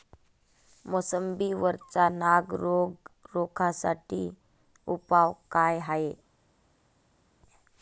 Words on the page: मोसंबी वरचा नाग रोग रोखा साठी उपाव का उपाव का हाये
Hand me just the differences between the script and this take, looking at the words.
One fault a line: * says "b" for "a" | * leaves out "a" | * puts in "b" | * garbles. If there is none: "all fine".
* leaves out "उपाव का"